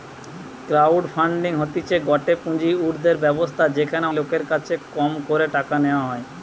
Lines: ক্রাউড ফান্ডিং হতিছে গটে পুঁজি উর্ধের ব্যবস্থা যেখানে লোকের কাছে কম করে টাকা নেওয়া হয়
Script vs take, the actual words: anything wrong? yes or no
no